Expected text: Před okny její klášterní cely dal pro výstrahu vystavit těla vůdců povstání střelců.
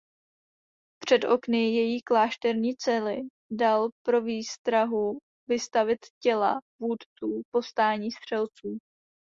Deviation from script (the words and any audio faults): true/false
false